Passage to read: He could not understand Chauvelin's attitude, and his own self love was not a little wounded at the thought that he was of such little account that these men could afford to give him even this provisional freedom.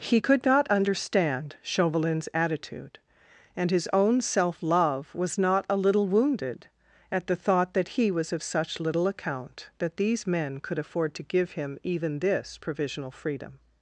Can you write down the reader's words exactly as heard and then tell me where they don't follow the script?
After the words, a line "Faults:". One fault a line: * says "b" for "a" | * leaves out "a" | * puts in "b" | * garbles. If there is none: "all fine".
He could not understand Chauvelin's attitude, and his own self love was not a little wounded at the thought that he was of such little account that these men could afford to give him even this provisional freedom.
Faults:
all fine